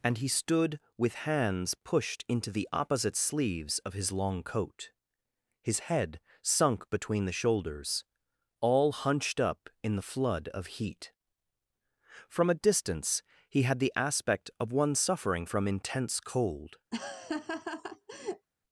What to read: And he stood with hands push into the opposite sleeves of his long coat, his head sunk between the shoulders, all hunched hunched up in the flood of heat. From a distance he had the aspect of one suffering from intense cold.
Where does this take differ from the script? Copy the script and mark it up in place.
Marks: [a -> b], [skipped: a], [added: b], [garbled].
And he stood with hands [push -> pushed] into the opposite sleeves of his long coat, his head sunk between the shoulders, all hunched [skipped: hunched] up in the flood of heat. From a distance he had the aspect of one suffering from intense cold.